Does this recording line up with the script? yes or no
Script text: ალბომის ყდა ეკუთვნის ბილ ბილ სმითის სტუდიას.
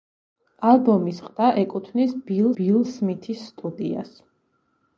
yes